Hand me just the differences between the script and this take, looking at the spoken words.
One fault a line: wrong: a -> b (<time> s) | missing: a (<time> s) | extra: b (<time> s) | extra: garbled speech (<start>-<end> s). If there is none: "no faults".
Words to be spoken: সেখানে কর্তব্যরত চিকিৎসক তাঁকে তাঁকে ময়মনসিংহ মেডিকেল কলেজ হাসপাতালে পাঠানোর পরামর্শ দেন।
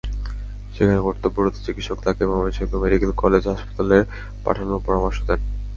missing: তাঁকে (2.2 s)